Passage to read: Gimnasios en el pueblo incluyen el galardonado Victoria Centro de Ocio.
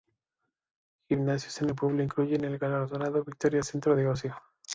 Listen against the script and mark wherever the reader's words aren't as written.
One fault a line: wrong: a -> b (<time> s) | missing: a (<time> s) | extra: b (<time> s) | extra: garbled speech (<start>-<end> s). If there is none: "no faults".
no faults